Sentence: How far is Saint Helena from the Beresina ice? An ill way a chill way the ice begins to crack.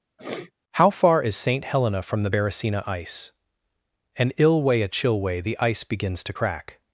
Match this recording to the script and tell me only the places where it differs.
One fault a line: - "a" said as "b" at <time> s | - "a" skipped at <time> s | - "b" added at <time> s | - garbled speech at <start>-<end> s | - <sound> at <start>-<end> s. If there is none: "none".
- sniff at 0.2-0.5 s